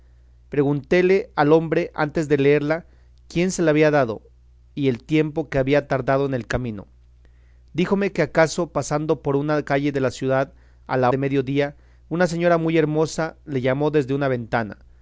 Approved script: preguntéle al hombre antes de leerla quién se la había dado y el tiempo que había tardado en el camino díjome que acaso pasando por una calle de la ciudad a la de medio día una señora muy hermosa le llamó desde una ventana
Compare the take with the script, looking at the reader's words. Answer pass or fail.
pass